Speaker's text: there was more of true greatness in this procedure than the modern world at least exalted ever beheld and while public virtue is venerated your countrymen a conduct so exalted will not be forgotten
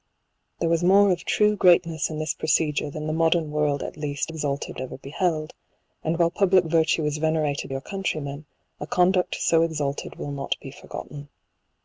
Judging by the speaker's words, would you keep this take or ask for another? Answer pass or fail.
pass